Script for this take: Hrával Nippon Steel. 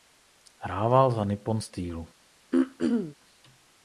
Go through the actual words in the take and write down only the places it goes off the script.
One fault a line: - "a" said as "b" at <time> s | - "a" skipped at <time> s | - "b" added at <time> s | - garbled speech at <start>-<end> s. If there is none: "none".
- "za" added at 1.1 s